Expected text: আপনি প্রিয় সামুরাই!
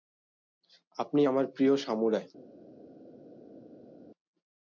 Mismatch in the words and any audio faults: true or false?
true